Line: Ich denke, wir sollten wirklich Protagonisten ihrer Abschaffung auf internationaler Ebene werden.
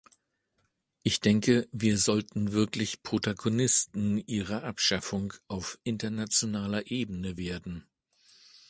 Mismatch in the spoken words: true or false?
false